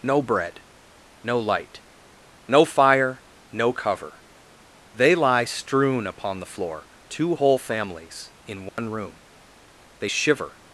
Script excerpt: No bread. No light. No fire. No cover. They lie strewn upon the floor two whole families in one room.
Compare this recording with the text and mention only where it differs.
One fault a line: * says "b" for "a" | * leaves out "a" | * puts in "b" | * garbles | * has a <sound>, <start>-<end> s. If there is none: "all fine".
* has a dropout, 8.7-8.8 s
* puts in "They shiver"